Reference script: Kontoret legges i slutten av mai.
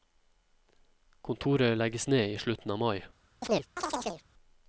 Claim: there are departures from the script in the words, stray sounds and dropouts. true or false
true